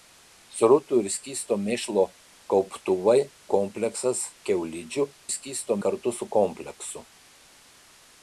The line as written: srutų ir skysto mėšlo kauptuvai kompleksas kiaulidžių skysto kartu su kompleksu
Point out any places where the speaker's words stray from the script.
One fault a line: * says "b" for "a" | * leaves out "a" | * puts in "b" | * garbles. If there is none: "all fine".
all fine